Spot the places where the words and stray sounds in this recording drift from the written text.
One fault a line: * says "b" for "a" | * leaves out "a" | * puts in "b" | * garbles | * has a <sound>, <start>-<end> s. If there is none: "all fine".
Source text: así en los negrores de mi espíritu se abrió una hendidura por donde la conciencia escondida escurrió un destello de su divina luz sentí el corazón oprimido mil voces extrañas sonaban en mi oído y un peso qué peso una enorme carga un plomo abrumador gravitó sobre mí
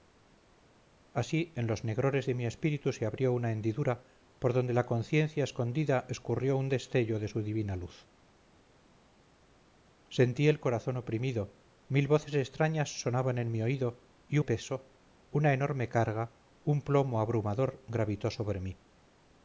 * leaves out "un peso qué"